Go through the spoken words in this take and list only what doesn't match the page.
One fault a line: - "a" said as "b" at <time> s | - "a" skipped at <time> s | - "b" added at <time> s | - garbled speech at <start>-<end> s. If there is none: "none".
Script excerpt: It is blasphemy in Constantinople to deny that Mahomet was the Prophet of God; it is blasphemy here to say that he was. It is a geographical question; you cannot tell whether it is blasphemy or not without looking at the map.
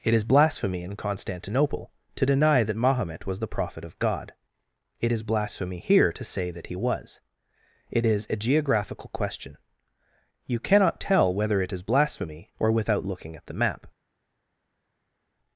- "not" skipped at 12.7 s